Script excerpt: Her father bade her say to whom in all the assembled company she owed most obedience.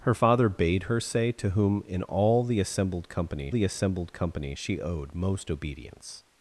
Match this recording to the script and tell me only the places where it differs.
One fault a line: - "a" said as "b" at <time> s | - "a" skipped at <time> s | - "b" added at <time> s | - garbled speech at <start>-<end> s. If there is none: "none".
- "the assembled company" added at 3.5 s